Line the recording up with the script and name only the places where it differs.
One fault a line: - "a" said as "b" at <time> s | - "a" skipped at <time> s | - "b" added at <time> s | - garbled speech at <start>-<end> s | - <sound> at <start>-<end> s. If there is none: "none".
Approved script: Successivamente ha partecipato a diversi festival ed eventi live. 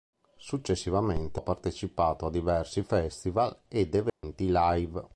- dropout at 4.1-4.2 s